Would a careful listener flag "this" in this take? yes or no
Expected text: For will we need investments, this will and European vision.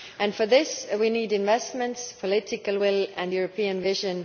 yes